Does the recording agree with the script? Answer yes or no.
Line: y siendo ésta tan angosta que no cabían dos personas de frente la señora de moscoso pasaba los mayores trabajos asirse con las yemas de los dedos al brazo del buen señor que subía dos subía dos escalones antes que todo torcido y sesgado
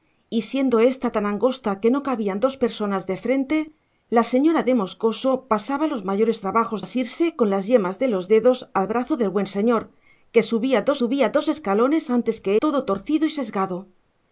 yes